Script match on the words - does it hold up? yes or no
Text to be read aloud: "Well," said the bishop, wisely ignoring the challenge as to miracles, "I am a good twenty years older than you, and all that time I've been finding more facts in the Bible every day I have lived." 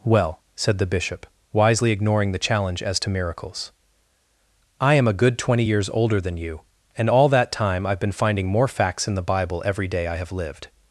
yes